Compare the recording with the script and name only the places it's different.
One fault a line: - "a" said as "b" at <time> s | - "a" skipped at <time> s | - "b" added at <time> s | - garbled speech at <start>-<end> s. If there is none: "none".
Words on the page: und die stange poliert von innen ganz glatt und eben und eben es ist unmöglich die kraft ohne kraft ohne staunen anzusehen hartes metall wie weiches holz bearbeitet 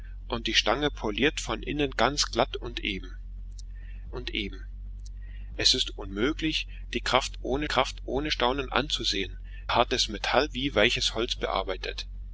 none